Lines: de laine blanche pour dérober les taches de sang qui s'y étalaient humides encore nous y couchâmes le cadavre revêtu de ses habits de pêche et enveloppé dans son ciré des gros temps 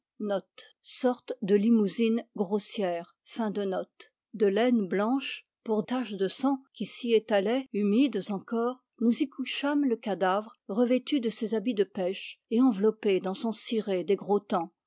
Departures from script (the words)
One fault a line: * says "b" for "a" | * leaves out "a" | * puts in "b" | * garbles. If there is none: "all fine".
* leaves out "dérober les"